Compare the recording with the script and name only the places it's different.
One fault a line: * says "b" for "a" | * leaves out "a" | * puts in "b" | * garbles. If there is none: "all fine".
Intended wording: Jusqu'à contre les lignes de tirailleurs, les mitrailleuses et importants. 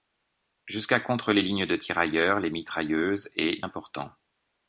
all fine